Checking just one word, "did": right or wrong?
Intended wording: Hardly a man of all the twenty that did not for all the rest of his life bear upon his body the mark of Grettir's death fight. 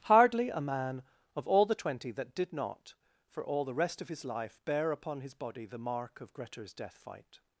right